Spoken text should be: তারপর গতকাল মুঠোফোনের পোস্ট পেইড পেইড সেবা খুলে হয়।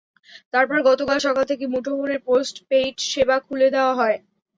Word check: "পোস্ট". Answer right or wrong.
right